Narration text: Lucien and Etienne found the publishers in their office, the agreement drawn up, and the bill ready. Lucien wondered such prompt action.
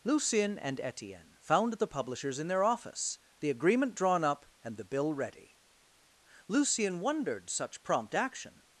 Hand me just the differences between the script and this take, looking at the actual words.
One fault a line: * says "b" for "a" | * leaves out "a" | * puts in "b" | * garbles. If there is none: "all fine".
all fine